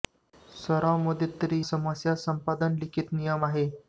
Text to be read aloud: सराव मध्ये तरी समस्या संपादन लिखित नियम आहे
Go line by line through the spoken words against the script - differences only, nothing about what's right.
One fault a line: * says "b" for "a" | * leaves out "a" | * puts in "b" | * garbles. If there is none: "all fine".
all fine